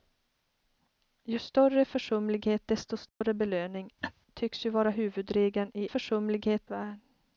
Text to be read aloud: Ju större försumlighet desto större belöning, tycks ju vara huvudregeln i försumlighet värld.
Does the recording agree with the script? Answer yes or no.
yes